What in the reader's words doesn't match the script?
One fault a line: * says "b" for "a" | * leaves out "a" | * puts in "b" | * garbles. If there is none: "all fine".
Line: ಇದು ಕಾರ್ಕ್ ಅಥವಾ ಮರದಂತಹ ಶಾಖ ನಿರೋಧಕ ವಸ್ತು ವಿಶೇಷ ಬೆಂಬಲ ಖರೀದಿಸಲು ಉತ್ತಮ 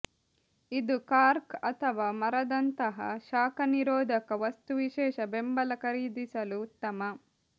all fine